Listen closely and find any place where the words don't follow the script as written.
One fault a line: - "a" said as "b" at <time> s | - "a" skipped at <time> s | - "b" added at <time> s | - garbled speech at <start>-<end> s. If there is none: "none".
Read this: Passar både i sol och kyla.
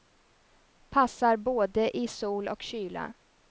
none